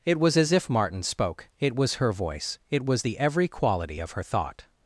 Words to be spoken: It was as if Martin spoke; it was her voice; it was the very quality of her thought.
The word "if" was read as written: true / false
true